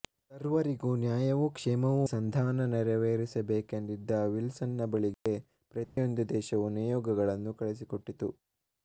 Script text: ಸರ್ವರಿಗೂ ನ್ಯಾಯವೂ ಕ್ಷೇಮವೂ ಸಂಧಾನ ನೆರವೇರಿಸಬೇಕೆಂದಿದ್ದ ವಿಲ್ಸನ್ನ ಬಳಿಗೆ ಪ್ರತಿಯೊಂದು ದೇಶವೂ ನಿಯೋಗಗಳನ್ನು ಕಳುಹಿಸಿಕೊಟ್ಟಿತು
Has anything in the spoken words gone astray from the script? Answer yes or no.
no